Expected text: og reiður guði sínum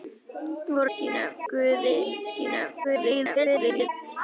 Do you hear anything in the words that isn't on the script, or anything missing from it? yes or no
yes